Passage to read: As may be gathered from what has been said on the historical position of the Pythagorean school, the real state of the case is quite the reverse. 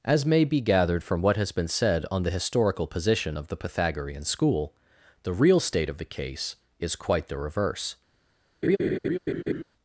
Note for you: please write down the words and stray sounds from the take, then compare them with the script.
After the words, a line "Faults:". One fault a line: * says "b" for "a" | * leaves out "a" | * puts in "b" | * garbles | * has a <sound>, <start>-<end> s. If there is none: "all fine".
As may be gathered from what has been said on the historical position of the Pythagorean school, the real state of the case is quite the reverse.
Faults:
* has a laugh, 8.6-9.6 s